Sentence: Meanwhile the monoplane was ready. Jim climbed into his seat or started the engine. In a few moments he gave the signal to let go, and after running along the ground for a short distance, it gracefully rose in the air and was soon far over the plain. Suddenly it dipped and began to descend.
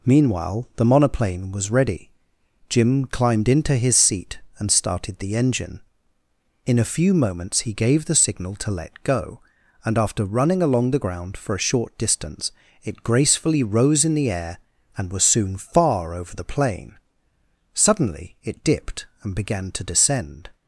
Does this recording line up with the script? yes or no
no